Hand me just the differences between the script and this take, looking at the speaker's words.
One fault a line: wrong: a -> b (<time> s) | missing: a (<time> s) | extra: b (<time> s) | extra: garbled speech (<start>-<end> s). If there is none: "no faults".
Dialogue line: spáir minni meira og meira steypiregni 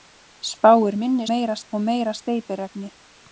no faults